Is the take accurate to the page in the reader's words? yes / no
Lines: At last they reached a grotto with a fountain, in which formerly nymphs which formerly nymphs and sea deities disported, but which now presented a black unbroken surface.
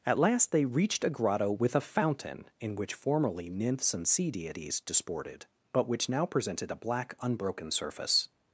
no